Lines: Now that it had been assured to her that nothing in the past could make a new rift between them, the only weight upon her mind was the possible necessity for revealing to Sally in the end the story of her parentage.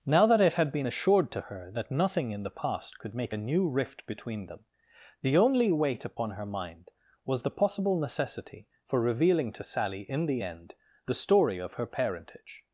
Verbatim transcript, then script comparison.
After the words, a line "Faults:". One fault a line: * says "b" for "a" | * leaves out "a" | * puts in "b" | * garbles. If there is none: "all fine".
Now that it had been assured to her that nothing in the past could make a new rift between them, the only weight upon her mind was the possible necessity for revealing to Sally in the end the story of her parentage.
Faults:
all fine